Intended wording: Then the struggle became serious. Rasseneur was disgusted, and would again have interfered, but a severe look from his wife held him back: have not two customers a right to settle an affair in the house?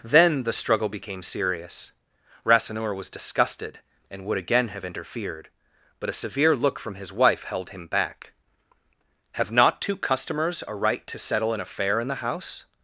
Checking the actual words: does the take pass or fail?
pass